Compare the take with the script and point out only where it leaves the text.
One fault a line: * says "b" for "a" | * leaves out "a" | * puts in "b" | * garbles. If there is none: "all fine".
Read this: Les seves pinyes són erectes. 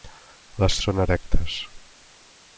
* leaves out "seves pinyes"